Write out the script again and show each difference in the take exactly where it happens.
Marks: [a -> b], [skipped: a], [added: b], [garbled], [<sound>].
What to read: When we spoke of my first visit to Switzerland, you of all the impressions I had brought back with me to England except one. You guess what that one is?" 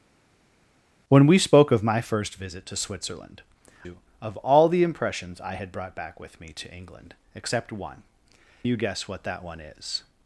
When we spoke of my first visit to Switzerland, you of all the impressions I had brought back with me to England except one. You guess what that one is?"